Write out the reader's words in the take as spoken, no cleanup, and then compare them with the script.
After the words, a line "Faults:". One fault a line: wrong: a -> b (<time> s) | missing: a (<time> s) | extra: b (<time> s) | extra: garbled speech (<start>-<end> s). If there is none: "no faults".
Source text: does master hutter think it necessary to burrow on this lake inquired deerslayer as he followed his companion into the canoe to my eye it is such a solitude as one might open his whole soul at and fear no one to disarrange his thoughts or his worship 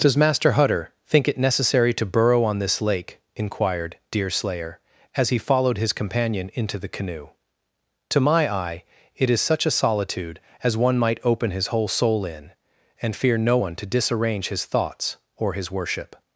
does master hutter think it necessary to burrow on this lake inquired deerslayer as he followed his companion into the canoe to my eye it is such a solitude as one might open his whole soul in and fear no one to disarrange his thoughts or his worship
Faults:
wrong: at -> in (12.2 s)